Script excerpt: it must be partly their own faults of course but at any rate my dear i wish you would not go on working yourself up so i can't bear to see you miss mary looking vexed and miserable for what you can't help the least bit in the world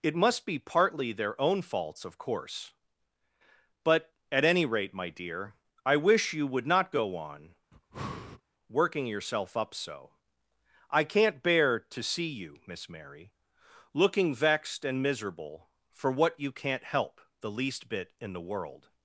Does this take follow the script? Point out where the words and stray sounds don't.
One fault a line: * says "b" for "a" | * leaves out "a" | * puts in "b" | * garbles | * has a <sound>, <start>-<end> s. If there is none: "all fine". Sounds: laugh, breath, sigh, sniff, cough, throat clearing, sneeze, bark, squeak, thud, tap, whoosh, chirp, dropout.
* has a breath, 7.7-8.4 s